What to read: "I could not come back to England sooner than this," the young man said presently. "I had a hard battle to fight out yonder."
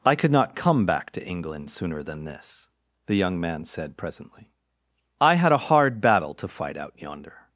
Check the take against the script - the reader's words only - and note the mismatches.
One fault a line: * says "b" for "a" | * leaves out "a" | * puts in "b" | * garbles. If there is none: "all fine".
all fine